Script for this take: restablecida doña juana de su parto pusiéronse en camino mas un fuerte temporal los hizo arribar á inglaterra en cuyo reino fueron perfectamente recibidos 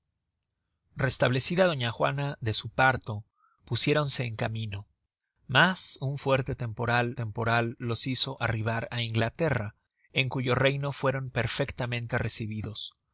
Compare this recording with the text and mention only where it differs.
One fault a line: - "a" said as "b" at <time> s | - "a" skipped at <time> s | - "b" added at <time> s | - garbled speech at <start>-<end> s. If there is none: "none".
- "temporal" added at 7.1 s